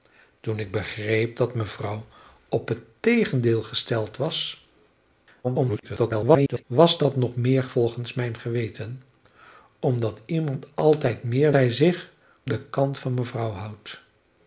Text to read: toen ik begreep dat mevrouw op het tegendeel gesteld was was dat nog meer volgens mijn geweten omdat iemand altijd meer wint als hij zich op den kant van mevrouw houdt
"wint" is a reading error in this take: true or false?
true